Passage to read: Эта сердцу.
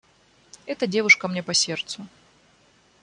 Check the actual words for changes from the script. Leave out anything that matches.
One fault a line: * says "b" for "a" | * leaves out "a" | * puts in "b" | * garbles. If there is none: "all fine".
* puts in "девушка мне по"